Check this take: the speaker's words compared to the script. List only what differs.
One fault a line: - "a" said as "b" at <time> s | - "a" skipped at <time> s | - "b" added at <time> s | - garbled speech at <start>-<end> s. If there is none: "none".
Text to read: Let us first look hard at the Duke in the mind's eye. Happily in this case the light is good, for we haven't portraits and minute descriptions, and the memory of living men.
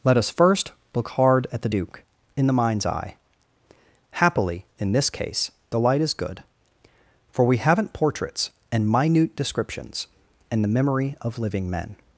none